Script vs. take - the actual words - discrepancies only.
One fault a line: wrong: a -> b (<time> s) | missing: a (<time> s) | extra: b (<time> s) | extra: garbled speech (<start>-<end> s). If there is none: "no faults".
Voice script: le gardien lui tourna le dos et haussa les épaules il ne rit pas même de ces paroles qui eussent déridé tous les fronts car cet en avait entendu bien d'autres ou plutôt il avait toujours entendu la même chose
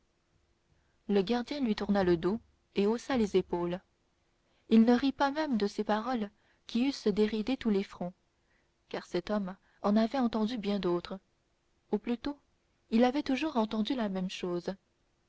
extra: homme (9.3 s)